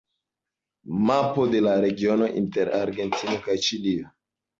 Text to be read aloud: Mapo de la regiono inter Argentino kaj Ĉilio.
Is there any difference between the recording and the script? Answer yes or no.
no